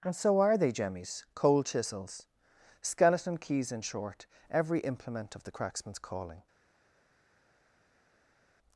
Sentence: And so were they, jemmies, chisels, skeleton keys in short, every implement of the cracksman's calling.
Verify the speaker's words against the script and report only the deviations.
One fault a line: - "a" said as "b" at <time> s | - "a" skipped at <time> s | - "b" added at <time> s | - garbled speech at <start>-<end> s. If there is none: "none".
- "were" said as "are" at 0.4 s
- "cold" added at 1.4 s